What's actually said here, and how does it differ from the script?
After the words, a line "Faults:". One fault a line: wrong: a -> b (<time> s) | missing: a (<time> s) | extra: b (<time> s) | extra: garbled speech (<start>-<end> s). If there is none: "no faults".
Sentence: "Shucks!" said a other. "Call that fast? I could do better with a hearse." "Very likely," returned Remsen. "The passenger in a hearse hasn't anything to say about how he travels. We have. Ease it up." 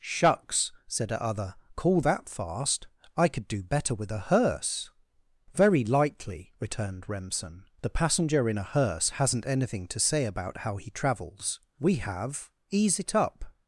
"Shucks!" said a other. "Call that fast? I could do better with a hearse." "Very likely," returned Remsen. "The passenger in a hearse hasn't anything to say about how he travels. We have. Ease it up."
Faults:
no faults